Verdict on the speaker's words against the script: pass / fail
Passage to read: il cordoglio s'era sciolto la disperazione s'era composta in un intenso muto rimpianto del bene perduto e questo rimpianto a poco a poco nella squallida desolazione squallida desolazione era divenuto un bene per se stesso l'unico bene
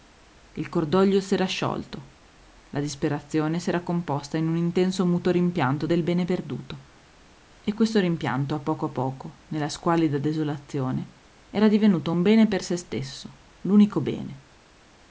fail